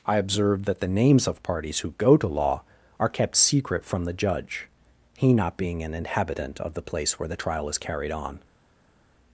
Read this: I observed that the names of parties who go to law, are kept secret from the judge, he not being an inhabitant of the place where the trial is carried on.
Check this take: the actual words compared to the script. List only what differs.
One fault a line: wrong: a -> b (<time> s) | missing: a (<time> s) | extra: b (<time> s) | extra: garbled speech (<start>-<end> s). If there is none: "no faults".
no faults